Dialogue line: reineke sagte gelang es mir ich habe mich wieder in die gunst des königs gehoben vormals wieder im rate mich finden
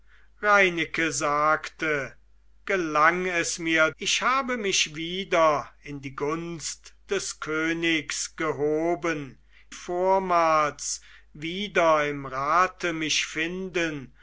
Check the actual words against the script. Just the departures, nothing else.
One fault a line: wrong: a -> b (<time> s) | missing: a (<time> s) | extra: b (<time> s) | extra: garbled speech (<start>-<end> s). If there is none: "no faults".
no faults